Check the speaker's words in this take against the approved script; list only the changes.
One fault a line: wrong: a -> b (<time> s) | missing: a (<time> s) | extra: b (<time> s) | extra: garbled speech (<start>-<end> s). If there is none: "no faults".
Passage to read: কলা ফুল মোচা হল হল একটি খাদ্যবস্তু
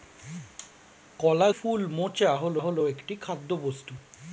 no faults